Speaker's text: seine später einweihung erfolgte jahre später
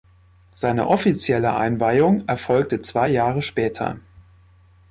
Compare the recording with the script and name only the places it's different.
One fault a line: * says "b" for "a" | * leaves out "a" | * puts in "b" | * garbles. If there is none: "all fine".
* says "offizielle" for "später"
* puts in "zwei"